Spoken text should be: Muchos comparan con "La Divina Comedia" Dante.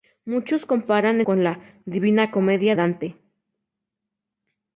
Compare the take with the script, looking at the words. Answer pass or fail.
pass